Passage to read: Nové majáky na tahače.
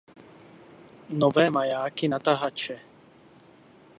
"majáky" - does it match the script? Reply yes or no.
yes